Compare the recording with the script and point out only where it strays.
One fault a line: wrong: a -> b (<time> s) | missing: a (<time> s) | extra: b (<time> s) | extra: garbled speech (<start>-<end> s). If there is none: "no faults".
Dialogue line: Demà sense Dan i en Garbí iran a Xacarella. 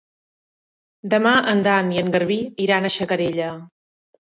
wrong: sense -> en (1.5 s)